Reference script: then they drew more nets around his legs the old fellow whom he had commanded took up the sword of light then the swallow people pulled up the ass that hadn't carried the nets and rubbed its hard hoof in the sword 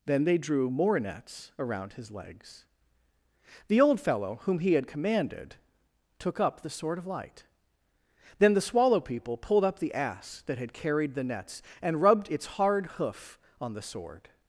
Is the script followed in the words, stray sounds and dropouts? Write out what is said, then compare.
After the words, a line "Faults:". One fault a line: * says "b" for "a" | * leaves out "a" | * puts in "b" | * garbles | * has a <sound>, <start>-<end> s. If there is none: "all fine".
then they drew more nets around his legs the old fellow whom he had commanded took up the sword of light then the swallow people pulled up the ass that had carried the nets and rubbed its hard hoof on the sword
Faults:
* says "had" for "hadn't"
* says "on" for "in"